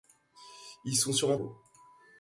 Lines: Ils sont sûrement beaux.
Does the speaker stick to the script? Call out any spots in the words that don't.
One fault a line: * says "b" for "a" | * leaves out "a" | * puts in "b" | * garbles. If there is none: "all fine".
all fine